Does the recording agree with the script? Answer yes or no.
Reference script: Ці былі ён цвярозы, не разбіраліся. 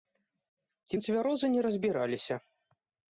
no